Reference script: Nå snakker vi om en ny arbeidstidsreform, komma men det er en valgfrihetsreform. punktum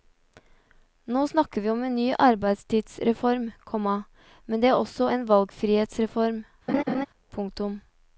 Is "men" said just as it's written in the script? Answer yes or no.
yes